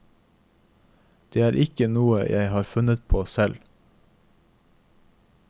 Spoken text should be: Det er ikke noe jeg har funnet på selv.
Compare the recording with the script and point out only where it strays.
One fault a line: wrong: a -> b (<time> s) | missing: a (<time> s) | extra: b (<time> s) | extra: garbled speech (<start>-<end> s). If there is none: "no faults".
no faults